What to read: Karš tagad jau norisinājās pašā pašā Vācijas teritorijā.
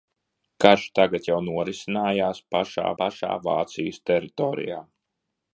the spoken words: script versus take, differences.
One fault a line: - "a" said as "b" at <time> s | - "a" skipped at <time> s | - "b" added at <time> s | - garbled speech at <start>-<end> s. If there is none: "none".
none